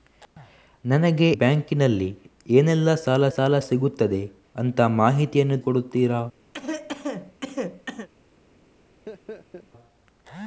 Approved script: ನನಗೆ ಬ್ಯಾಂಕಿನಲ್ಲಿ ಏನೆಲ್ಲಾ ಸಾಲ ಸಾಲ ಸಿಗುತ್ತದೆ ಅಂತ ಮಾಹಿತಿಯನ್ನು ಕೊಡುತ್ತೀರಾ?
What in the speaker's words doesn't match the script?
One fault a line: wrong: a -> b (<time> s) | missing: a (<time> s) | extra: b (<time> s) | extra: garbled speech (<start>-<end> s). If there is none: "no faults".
no faults